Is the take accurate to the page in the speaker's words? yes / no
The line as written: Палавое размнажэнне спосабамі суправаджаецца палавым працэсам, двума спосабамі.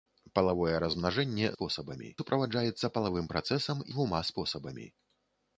yes